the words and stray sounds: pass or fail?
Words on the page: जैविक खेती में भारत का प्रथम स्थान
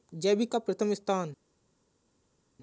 fail